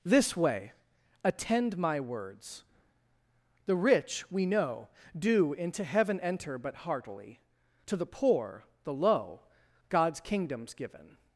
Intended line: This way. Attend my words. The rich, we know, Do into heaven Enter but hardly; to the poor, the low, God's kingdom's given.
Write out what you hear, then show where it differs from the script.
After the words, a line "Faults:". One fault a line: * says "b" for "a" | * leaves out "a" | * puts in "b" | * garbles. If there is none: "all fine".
This way. Attend my words. The rich, we know, Do into heaven Enter but heartily; to the poor, the low, God's kingdom's given.
Faults:
* says "heartily" for "hardly"